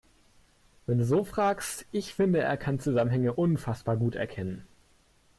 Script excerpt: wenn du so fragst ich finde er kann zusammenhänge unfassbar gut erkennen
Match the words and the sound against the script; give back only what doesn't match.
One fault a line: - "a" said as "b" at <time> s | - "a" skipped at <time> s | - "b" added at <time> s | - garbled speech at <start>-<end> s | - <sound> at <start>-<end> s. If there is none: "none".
none